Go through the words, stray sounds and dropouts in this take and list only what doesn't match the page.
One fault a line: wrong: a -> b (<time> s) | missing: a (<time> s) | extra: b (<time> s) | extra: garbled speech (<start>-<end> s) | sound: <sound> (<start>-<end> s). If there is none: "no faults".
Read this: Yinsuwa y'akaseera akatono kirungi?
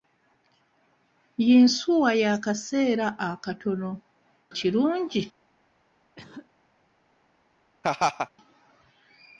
sound: cough (6.2-6.5 s)
sound: laugh (7.8-8.3 s)